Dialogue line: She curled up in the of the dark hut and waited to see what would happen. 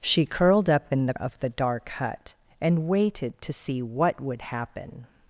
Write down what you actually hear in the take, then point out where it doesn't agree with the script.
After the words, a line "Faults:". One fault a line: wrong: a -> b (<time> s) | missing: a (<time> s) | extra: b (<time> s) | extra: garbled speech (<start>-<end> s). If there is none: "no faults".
She curled up in the of the dark hut and waited to see what would happen.
Faults:
no faults